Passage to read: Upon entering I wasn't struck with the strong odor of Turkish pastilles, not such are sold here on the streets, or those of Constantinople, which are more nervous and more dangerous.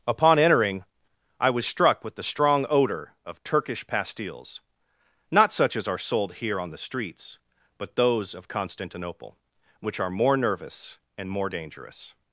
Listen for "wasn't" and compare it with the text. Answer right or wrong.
wrong